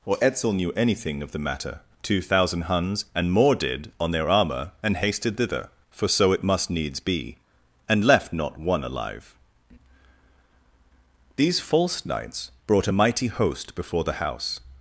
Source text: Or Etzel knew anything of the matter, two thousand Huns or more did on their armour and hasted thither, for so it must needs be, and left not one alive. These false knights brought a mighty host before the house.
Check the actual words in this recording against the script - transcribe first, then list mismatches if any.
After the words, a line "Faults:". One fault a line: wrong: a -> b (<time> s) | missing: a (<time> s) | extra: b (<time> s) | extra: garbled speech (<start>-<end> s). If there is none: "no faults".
Or Etzel knew anything of the matter, two thousand Huns and more did on their armour and hasted thither, for so it must needs be, and left not one alive. These false knights brought a mighty host before the house.
Faults:
wrong: or -> and (3.1 s)